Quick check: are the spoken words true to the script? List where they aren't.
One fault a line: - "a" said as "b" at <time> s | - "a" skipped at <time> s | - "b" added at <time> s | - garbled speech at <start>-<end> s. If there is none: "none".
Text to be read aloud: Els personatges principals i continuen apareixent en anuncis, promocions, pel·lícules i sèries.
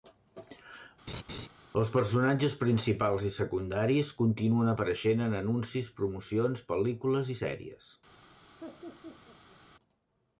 - "secundaris" added at 3.4 s